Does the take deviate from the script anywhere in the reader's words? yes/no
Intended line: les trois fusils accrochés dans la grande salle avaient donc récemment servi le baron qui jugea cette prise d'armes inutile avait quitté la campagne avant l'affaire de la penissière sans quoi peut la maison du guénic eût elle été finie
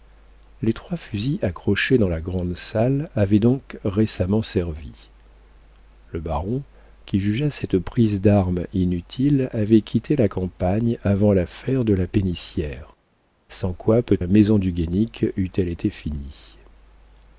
no